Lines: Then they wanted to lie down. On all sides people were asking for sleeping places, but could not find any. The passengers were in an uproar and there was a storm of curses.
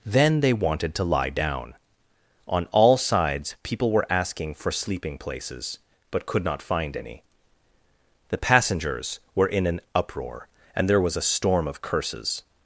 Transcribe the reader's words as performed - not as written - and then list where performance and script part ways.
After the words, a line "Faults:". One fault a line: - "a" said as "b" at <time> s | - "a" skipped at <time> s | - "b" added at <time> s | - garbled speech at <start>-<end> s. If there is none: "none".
Then they wanted to lie down. On all sides people were asking for sleeping places, but could not find any. The passengers were in an uproar and there was a storm of curses.
Faults:
none